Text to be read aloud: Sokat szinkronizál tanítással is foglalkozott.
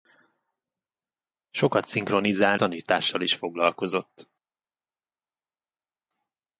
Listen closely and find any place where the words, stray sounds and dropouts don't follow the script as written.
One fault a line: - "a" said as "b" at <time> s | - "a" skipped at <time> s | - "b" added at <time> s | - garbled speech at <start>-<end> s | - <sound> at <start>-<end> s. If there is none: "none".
none